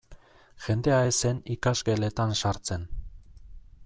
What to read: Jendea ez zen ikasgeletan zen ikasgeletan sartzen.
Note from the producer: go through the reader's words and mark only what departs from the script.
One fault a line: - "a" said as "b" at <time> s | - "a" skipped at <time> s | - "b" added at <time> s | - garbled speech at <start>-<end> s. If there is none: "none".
- "zen ikasgeletan" skipped at 2.3 s